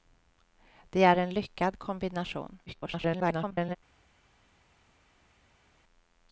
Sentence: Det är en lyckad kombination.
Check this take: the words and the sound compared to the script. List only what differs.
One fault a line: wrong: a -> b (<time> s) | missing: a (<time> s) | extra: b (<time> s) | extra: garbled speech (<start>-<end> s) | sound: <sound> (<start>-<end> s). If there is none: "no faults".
extra: garbled speech (2.7-3.8 s)